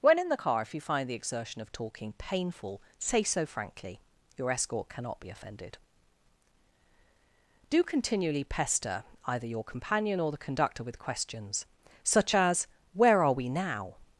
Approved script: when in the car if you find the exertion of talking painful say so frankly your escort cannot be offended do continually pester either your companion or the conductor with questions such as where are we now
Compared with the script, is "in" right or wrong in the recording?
right